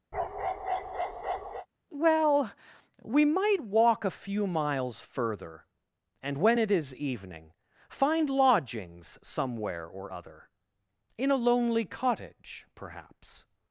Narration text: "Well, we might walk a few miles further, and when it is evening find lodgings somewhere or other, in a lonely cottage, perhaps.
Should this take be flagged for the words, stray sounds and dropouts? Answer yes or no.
yes